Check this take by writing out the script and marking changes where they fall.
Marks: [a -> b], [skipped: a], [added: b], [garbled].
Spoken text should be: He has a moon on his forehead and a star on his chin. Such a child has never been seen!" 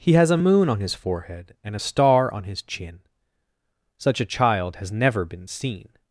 He has a moon on his forehead and a star on his chin. Such a child has never been seen!"